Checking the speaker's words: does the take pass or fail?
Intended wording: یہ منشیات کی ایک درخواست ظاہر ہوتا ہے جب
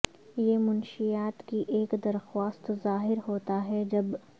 pass